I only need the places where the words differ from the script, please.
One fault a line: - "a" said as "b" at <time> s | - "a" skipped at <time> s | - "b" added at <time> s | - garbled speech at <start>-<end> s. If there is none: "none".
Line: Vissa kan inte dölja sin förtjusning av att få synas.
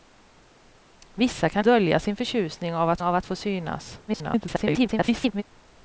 - "inte" skipped at 1.6 s
- "av att" added at 3.0 s
- garbled speech at 4.1-5.4 s